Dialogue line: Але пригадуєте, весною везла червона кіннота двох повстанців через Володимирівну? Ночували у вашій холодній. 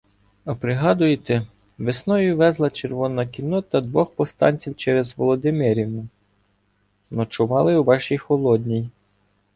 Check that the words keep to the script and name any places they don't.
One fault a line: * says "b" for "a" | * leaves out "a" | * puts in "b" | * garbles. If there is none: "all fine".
* says "А" for "Але"